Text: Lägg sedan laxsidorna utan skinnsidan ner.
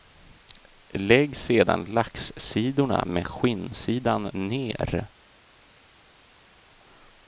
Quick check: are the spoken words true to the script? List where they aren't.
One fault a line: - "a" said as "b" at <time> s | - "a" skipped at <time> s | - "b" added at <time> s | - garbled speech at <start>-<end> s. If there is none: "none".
- "utan" said as "med" at 3.0 s